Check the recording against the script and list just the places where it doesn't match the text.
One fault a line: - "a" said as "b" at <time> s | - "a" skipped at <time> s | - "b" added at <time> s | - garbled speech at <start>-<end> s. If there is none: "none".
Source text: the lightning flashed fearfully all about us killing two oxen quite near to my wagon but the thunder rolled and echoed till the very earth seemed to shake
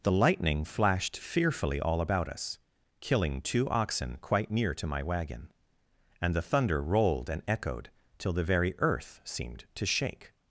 - "but" said as "and" at 6.2 s